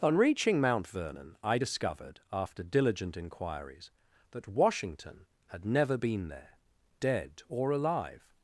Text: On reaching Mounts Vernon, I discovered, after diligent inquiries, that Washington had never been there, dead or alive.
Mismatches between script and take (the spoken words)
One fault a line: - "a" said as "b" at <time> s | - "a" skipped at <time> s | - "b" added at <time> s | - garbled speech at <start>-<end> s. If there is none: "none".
- "Mounts" said as "Mount" at 0.6 s